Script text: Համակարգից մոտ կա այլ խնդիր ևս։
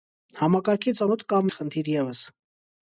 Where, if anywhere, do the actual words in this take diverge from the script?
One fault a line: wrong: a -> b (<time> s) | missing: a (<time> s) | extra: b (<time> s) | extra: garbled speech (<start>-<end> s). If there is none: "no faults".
no faults